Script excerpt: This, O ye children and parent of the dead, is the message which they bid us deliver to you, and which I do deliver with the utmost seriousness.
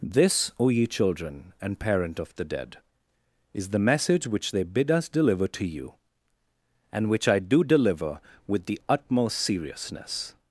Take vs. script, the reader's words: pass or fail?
pass